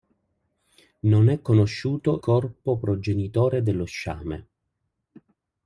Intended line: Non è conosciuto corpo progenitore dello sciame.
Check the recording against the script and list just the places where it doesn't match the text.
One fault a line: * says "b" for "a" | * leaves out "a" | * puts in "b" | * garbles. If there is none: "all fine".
all fine